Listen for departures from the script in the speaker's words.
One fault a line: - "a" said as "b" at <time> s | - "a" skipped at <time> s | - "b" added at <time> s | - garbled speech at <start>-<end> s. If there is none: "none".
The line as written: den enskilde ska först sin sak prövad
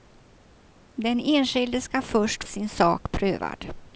none